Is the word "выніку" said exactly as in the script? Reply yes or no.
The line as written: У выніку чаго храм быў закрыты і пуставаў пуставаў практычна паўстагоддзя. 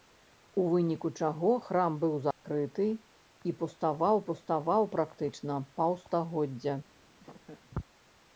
yes